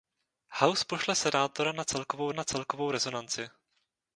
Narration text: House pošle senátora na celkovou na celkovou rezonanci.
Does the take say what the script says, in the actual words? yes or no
yes